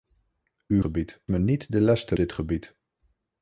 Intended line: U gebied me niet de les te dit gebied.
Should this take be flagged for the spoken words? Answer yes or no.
no